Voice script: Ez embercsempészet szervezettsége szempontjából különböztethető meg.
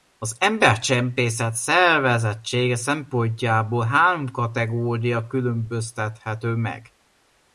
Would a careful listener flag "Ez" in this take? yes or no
yes